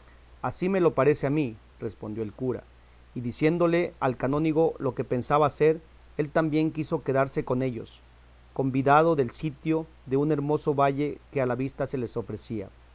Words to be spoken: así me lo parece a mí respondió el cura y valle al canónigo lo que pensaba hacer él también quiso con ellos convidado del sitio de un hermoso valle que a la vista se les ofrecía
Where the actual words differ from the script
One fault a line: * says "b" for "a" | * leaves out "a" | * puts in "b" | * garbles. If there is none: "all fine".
* says "diciéndole" for "valle"
* puts in "quedarse"